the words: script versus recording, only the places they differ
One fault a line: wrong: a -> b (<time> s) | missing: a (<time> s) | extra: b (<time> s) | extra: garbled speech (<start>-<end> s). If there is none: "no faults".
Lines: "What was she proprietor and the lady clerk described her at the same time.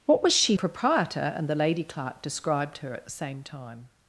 no faults